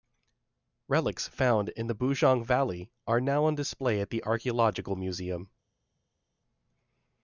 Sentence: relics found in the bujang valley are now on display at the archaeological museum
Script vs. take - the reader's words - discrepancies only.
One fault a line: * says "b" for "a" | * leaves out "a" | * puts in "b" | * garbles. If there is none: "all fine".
all fine